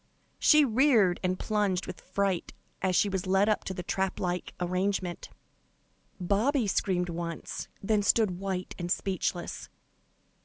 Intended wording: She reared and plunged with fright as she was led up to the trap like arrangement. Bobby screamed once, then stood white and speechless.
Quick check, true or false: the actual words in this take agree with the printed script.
true